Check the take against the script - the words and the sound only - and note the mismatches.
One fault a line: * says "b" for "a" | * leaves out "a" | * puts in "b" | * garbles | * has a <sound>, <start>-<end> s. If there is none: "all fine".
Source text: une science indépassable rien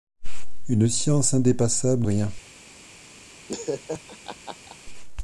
* has a laugh, 3.5-4.8 s